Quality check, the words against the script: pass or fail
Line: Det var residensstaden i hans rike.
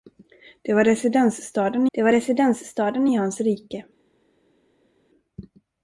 fail